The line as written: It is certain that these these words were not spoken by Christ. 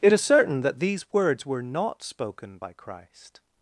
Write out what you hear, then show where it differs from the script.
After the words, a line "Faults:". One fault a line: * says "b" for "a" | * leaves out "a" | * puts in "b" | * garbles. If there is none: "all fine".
It is certain that these words were not spoken by Christ.
Faults:
* leaves out "these"